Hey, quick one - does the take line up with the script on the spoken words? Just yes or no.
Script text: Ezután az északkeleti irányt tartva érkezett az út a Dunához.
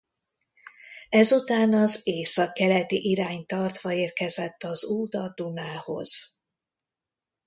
yes